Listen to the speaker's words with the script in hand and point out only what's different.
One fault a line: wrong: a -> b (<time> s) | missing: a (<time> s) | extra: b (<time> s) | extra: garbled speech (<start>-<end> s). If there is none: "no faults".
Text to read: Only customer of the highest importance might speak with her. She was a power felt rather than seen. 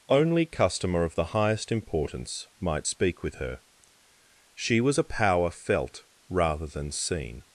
no faults